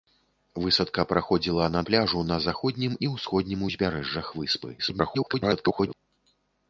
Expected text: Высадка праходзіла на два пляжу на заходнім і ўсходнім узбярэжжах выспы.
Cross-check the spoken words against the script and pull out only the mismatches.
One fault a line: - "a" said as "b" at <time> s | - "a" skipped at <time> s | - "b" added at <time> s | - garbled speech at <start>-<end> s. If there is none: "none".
- "два" skipped at 1.8 s
- garbled speech at 4.8-5.9 s